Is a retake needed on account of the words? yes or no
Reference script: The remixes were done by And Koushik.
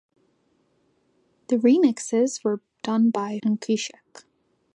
no